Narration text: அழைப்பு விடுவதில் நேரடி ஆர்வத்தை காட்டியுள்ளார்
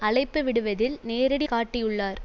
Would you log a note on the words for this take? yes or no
yes